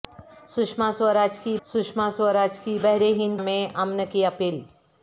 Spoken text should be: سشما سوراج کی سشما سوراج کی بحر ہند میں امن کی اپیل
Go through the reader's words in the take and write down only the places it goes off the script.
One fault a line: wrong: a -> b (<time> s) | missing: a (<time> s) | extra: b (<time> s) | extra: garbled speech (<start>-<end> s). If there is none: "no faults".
no faults